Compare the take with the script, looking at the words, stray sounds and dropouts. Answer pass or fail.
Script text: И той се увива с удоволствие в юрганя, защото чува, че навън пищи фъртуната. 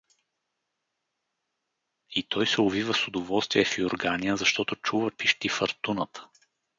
fail